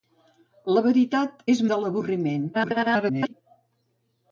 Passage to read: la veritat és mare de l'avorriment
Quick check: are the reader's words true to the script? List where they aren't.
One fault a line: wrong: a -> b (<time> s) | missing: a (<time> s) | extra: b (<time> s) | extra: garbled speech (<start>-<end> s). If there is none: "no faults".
missing: mare (1.6 s)
extra: garbled speech (2.5-3.3 s)